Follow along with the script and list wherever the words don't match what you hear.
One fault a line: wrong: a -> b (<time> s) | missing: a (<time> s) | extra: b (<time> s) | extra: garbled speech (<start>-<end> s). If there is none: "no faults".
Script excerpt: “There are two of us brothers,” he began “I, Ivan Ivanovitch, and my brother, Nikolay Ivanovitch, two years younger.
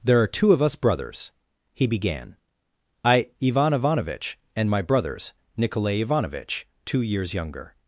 wrong: brother -> brothers (4.8 s)